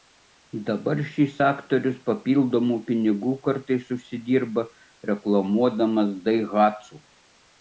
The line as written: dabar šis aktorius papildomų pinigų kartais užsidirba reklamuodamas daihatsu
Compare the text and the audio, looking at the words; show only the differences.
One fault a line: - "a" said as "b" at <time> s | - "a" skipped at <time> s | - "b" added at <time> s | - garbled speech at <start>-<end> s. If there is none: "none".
none